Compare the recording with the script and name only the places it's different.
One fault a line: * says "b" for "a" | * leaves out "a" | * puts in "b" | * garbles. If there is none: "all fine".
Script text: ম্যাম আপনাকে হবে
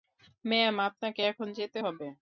* puts in "এখন যেতে"